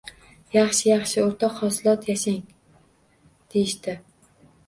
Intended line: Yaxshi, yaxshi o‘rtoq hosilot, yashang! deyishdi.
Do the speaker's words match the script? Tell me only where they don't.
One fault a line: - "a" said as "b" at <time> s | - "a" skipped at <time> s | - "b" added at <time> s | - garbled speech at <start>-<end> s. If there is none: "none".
none